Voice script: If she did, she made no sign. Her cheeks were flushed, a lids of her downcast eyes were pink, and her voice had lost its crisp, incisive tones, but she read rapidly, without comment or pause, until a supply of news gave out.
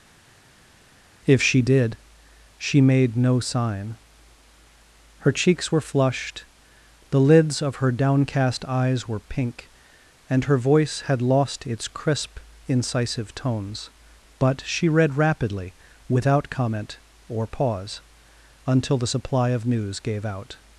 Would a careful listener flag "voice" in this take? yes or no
no